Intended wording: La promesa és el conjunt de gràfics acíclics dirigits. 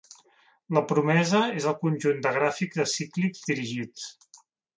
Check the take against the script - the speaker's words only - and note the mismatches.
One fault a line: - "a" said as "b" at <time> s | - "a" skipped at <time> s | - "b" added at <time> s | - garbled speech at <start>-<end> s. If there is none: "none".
none